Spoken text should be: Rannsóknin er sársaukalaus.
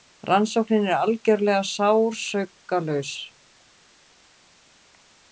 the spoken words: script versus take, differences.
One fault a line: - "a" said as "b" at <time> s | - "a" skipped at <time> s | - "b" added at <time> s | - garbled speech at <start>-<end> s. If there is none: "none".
- "algerlega" added at 1.0 s